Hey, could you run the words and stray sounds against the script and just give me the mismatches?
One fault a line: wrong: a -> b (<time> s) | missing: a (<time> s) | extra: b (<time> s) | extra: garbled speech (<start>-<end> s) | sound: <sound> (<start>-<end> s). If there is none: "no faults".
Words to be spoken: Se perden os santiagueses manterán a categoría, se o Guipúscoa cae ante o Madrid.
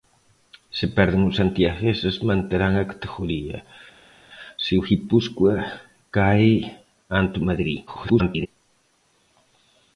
extra: garbled speech (7.9-8.5 s)